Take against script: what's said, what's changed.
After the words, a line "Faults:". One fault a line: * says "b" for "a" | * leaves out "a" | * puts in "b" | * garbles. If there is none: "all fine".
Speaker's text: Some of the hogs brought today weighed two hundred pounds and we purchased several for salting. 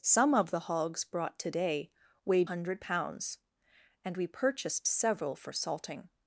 Some of the hogs brought today weighed hundred pounds and we purchased several for salting.
Faults:
* leaves out "two"